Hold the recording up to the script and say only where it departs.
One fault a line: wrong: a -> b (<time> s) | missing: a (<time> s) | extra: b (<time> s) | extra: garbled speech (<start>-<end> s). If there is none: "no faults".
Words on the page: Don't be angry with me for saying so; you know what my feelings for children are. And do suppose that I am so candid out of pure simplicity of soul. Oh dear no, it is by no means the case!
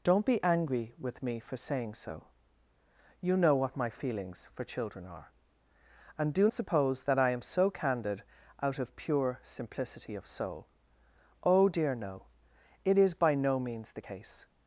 no faults